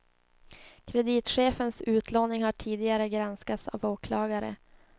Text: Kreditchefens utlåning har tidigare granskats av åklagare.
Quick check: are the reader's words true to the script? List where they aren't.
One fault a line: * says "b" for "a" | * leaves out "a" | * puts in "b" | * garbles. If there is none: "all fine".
all fine